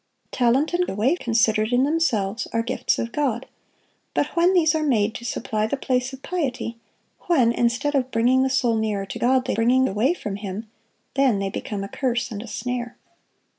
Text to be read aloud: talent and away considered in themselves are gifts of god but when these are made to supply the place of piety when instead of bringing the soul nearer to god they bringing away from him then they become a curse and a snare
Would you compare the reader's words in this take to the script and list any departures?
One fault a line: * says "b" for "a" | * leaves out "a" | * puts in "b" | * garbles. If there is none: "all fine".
all fine